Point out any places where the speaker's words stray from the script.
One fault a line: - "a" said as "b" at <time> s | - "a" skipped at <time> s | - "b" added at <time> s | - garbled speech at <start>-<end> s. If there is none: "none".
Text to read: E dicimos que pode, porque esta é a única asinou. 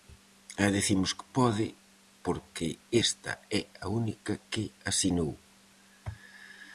- "que" added at 4.5 s